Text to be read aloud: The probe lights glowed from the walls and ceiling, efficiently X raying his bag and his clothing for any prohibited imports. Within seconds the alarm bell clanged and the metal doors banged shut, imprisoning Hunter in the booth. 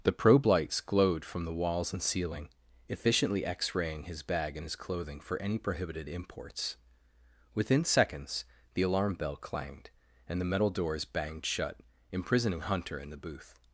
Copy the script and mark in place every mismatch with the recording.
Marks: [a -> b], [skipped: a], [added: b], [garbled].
The probe lights glowed from the walls and ceiling, efficiently X raying his bag and his clothing for any prohibited imports. Within seconds the alarm bell clanged and the metal doors banged shut, imprisoning Hunter in the booth.